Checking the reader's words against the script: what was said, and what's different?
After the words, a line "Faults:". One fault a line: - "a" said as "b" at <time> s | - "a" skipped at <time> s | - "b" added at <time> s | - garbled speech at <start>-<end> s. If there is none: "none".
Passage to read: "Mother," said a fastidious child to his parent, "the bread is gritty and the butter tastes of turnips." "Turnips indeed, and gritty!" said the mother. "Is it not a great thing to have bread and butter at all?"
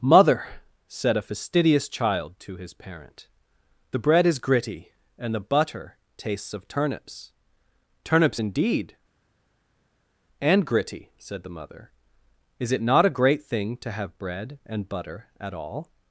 "Mother," said a fastidious child to his parent, "the bread is gritty and the butter tastes of turnips." "Turnips indeed, and gritty!" said the mother. "Is it not a great thing to have bread and butter at all?"
Faults:
none